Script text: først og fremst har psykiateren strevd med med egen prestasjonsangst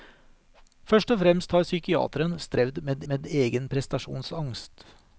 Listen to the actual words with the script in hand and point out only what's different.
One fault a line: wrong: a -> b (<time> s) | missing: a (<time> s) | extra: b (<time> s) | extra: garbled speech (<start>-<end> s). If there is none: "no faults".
no faults